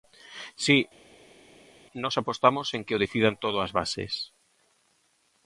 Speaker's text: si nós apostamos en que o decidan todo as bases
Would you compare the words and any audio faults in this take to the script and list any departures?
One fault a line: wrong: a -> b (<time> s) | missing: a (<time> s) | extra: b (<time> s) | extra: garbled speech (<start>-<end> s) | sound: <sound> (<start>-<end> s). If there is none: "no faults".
no faults